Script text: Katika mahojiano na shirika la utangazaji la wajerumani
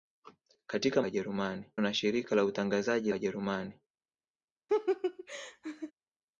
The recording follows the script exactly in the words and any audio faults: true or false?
false